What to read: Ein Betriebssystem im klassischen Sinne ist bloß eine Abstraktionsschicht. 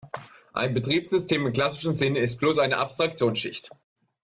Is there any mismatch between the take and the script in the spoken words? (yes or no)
no